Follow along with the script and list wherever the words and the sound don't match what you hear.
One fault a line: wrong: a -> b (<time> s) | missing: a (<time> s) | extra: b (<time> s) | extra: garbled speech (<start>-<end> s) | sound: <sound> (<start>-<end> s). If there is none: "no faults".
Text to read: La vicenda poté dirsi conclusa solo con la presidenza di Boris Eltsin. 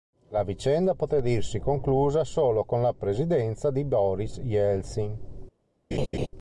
sound: laugh (5.9-6.3 s)